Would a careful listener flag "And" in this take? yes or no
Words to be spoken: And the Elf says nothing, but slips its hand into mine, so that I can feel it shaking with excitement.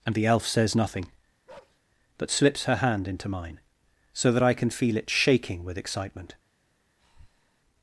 no